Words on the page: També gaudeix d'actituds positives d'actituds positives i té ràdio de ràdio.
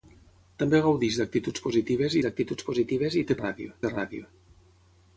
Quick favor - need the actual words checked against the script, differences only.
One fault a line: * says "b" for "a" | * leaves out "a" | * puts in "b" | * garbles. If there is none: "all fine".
all fine